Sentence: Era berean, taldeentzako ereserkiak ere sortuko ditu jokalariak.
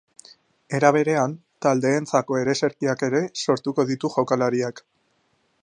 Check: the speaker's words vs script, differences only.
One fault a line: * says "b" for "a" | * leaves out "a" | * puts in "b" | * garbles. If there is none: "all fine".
all fine